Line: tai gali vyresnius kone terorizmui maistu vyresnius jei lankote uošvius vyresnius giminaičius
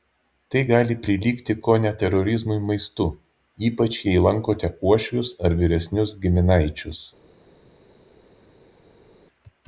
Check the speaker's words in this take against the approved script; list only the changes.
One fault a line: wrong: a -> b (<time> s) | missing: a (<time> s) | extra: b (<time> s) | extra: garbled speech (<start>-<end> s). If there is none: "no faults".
wrong: vyresnius -> prilygti (1.1 s)
wrong: vyresnius -> ypač (3.7 s)
extra: ar (5.5 s)